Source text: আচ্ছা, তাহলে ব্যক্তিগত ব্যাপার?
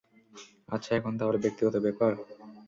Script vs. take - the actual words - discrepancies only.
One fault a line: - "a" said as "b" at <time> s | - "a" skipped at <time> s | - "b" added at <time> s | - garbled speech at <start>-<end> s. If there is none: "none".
- "এখন" added at 1.0 s